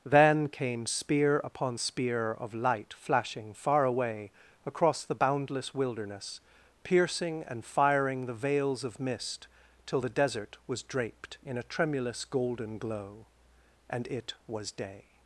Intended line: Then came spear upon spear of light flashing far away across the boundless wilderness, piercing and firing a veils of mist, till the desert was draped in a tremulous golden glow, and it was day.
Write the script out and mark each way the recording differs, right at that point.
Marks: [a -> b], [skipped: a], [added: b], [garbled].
Then came spear upon spear of light flashing far away across the boundless wilderness, piercing and firing [a -> the] veils of mist, till the desert was draped in a tremulous golden glow, and it was day.